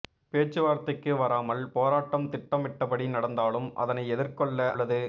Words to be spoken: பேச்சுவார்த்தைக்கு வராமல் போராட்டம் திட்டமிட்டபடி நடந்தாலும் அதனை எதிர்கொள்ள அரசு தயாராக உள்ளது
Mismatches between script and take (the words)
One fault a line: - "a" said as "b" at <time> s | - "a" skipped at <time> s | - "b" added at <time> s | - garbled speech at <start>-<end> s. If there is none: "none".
- "அரசு தயாராக" skipped at 4.6 s